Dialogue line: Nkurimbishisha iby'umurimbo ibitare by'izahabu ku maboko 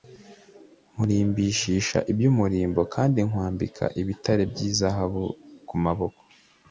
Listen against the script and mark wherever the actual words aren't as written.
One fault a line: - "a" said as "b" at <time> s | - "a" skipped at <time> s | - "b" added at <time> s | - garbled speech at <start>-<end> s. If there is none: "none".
- "kandi nkwambika" added at 2.9 s